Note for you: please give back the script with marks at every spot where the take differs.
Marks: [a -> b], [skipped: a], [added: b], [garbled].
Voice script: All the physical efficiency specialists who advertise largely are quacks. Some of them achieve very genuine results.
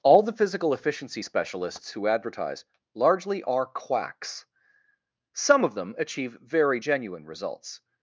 All the physical efficiency specialists who advertise largely are quacks. Some of them achieve very genuine results.